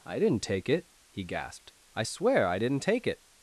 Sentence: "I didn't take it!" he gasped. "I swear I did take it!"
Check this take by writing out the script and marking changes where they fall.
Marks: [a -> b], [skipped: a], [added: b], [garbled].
"I didn't take it!" he gasped. "I swear I [did -> didn't] take it!"